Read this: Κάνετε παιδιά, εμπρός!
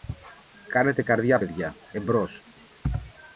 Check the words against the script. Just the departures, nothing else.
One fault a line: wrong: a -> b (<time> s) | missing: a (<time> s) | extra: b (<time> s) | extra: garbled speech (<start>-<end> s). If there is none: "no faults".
extra: καρδιά (1.0 s)